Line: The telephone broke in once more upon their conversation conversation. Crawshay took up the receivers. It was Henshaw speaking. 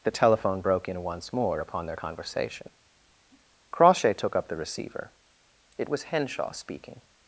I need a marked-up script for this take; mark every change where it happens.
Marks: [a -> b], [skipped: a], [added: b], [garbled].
The telephone broke in once more upon their conversation [skipped: conversation.] Crawshay took up the [receivers. -> receiver] It was Henshaw speaking.